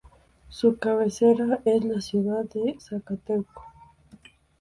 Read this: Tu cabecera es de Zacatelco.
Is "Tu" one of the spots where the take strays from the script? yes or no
yes